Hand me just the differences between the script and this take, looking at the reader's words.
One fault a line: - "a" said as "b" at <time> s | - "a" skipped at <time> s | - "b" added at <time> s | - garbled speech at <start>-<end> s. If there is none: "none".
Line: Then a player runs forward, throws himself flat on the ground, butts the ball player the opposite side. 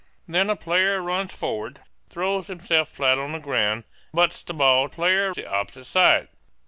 none